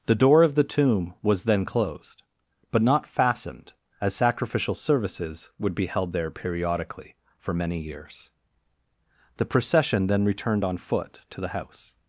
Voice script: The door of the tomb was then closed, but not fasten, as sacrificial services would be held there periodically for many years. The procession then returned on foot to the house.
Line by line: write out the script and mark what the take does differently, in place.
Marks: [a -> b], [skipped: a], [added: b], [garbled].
The door of the tomb was then closed, but not [fasten, -> fastened] as sacrificial services would be held there periodically for many years. The procession then returned on foot to the house.